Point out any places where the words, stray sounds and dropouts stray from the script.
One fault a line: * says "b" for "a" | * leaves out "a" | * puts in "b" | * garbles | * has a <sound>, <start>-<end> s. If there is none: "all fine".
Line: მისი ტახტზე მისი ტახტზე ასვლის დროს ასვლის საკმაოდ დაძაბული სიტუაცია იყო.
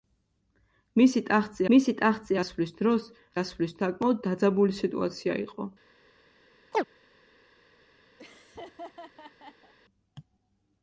* has a chirp, 6.7-6.8 s
* has a laugh, 8.2-9.7 s